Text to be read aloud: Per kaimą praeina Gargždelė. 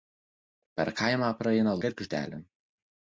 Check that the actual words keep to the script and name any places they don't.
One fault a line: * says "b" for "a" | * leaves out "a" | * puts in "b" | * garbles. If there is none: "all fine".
all fine